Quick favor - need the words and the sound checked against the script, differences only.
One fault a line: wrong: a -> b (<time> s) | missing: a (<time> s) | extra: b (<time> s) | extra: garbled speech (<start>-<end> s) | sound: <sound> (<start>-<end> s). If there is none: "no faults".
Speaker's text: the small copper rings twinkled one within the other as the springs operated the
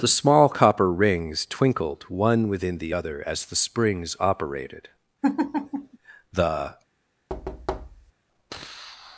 sound: laugh (5.2-6.0 s)
sound: thud (7.3-8.1 s)